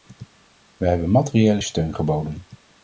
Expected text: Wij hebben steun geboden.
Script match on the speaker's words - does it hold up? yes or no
no